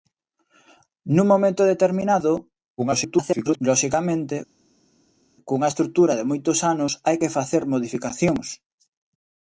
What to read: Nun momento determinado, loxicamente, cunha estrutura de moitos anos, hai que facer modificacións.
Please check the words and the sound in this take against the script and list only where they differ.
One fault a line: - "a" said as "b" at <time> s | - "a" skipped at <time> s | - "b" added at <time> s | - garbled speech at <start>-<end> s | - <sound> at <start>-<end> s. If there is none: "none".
- garbled speech at 2.8-3.6 s